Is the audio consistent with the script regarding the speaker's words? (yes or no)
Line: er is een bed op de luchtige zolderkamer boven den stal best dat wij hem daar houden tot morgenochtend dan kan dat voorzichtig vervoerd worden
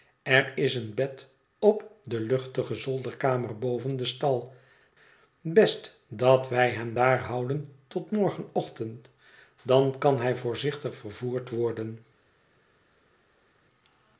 no